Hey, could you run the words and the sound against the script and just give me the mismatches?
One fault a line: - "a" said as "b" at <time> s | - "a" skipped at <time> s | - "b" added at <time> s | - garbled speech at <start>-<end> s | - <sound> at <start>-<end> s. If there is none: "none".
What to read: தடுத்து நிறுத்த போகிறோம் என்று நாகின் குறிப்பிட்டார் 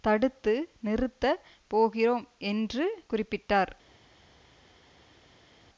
- "நாகின்" skipped at 2.9 s